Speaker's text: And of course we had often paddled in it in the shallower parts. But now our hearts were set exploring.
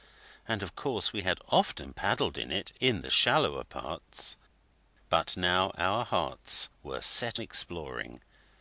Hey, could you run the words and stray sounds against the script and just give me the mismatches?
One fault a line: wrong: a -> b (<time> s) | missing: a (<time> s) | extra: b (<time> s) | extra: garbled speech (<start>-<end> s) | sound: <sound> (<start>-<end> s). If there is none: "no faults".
no faults